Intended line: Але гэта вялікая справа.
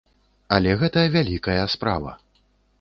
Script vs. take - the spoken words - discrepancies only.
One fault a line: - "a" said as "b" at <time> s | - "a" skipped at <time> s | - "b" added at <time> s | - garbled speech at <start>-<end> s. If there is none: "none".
none